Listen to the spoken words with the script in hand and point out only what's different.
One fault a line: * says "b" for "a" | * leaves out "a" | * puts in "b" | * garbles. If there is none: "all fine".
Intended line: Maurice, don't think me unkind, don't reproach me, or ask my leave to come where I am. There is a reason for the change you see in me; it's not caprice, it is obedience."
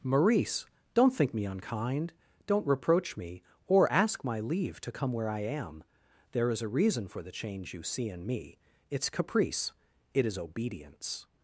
* leaves out "not"